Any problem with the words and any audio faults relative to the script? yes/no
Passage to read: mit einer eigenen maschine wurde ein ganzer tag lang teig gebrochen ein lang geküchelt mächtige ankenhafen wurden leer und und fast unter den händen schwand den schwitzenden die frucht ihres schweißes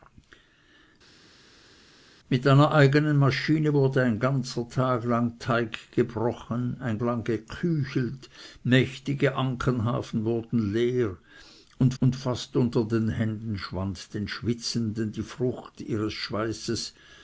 no